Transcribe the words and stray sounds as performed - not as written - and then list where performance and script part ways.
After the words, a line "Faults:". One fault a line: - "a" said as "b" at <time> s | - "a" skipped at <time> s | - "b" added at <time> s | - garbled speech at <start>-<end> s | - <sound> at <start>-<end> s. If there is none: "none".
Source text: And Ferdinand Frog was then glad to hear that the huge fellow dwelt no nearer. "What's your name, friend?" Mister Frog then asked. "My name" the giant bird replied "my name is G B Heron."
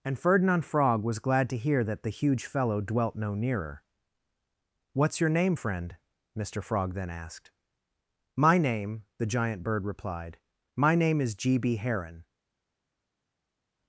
And Ferdinand Frog was glad to hear that the huge fellow dwelt no nearer. "What's your name, friend?" Mister Frog then asked. "My name" the giant bird replied "my name is G B Heron."
Faults:
- "then" skipped at 1.2 s